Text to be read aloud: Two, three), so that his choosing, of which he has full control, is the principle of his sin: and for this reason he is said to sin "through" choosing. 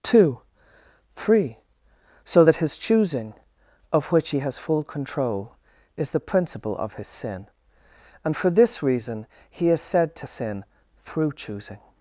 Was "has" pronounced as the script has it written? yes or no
yes